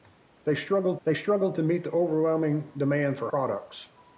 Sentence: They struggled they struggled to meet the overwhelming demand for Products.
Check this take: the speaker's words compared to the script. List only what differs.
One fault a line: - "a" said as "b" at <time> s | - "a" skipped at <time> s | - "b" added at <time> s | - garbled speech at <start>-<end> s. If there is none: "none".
none